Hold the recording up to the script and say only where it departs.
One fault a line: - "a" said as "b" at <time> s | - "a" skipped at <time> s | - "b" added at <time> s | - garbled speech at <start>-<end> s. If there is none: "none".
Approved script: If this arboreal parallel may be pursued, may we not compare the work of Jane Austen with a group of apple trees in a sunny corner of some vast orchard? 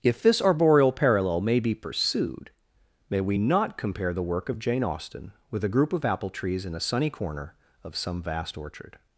none